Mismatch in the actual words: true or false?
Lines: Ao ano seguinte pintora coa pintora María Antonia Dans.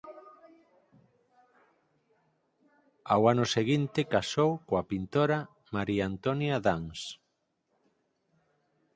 true